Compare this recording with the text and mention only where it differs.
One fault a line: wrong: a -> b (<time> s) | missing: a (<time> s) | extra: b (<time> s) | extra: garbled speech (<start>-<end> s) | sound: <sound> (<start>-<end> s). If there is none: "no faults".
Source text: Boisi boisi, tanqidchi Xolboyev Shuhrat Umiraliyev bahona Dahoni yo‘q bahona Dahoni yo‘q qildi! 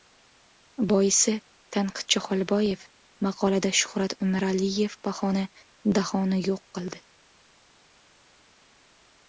missing: boisi (1.3 s)
extra: maqolada (3.3 s)
missing: bahona Dahoni yo‘q (6.7 s)